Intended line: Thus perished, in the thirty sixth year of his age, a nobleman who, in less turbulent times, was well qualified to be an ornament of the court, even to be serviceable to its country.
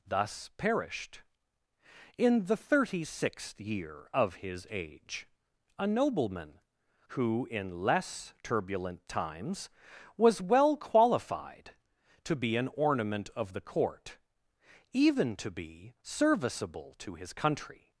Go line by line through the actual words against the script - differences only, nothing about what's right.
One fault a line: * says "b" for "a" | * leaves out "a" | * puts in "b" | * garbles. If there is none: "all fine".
* says "his" for "its"